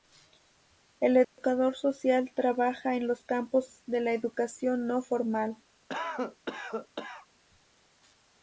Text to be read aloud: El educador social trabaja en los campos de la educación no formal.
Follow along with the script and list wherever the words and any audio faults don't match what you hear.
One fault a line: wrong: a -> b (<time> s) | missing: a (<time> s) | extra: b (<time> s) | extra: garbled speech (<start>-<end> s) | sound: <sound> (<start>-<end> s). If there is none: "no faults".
sound: dropout (1.2-1.4 s)
sound: cough (5.9-7.3 s)